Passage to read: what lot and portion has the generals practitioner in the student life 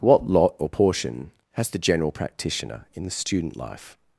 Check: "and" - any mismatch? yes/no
yes